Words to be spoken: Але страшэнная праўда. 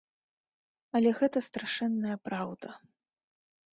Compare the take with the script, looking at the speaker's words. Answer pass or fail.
fail